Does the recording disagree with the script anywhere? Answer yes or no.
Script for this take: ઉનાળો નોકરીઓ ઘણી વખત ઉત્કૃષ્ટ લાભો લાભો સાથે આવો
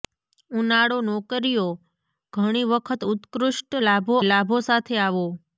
no